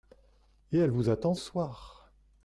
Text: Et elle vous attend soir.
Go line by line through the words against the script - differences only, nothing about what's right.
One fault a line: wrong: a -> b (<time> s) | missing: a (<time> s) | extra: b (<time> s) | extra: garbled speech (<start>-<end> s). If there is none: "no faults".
no faults